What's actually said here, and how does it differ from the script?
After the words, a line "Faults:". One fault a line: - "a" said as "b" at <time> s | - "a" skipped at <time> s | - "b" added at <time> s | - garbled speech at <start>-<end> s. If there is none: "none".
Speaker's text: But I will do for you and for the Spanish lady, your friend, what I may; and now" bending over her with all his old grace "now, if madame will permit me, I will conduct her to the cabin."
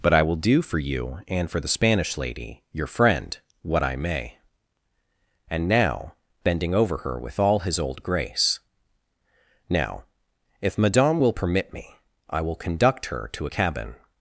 But I will do for you and for the Spanish lady, your friend, what I may; and now" bending over her with all his old grace "now, if madame will permit me, I will conduct her to a cabin."
Faults:
- "the" said as "a" at 13.4 s